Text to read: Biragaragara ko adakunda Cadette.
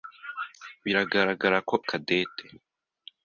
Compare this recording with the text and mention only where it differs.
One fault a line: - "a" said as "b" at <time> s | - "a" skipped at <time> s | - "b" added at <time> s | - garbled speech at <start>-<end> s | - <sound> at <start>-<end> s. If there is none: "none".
- "adakunda" skipped at 1.8 s